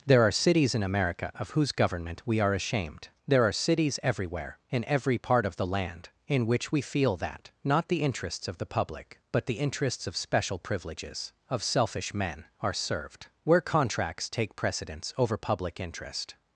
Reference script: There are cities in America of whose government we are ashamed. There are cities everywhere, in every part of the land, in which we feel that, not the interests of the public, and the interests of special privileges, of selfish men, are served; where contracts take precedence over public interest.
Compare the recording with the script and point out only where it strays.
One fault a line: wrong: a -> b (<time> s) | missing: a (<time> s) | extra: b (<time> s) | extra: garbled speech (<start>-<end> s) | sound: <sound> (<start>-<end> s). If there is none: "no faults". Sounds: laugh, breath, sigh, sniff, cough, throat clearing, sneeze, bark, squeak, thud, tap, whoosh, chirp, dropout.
wrong: and -> but (9.3 s)